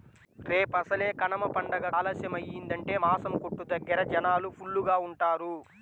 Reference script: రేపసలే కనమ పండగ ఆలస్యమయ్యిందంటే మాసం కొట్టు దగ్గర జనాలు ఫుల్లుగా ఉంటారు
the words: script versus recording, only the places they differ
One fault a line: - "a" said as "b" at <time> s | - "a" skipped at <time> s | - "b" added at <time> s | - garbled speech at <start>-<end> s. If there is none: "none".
none